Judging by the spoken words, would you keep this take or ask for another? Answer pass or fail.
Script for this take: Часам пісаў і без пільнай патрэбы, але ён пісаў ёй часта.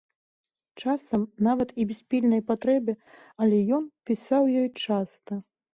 fail